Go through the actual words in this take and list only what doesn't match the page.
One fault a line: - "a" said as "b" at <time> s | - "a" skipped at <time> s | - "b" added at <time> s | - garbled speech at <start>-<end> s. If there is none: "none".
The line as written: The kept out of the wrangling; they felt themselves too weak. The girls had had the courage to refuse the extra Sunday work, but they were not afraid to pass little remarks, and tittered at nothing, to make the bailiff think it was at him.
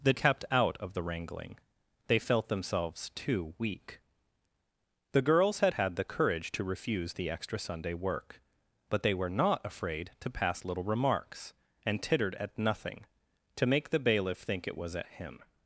none